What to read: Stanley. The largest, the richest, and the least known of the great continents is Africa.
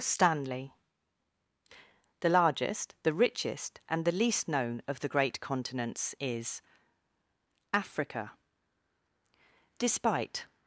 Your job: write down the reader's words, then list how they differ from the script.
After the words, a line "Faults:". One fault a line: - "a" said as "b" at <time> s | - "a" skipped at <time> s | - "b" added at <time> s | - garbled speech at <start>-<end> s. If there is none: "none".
Stanley. The largest, the richest, and the least known of the great continents is Africa. Despite
Faults:
- "Despite" added at 9.8 s